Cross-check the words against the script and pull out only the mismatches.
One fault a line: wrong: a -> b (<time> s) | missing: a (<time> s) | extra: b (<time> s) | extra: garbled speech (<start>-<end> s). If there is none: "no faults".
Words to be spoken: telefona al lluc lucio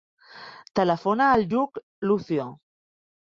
no faults